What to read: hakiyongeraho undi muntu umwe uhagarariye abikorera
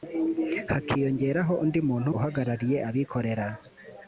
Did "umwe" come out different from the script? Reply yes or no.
yes